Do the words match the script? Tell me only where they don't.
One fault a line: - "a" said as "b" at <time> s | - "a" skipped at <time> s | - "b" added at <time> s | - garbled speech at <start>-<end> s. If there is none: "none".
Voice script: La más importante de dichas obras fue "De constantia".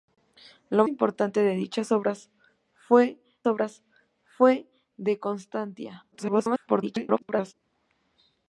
- "más" skipped at 0.8 s
- "obras fue" added at 3.5 s
- garbled speech at 6.1-7.5 s